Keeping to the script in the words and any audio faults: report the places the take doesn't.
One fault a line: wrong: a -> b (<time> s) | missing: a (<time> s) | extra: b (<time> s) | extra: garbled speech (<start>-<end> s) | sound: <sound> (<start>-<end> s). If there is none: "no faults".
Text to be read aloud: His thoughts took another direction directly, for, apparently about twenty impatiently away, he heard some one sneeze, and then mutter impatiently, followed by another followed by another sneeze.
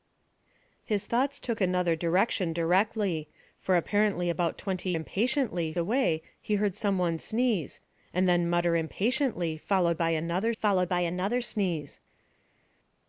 no faults